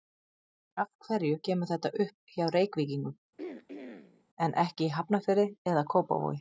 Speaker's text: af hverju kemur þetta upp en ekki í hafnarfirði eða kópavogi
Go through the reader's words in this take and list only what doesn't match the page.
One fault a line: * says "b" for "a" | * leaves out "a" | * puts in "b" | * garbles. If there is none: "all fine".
* puts in "hjá reykvíkingum"